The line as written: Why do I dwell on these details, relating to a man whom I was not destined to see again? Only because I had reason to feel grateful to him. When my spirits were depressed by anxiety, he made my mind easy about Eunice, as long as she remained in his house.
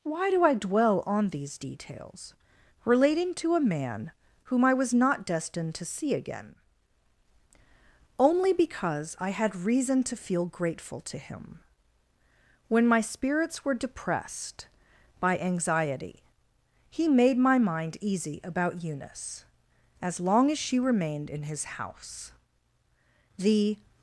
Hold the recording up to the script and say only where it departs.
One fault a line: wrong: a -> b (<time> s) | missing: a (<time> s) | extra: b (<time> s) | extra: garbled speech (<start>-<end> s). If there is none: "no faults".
extra: The (23.4 s)